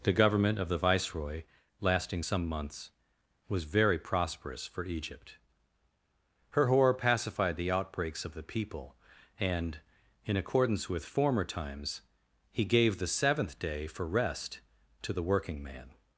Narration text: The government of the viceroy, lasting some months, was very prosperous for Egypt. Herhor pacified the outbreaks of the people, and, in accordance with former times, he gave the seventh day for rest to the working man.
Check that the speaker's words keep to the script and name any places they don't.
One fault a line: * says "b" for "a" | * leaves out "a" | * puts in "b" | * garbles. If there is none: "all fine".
all fine